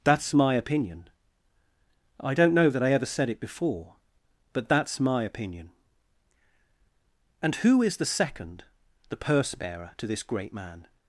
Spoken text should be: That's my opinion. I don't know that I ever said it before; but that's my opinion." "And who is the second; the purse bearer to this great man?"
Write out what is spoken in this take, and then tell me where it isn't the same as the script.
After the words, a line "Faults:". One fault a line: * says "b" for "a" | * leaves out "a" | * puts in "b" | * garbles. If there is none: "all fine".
That's my opinion. I don't know that I ever said it before; but that's my opinion." "And who is the second; the purse bearer to this great man?"
Faults:
all fine